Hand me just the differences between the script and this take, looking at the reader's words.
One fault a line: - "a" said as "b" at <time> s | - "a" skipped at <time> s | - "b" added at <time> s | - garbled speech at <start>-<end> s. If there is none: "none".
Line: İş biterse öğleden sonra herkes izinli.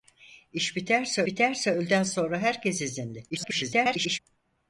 - "biterse" added at 1.3 s
- garbled speech at 3.3-4.2 s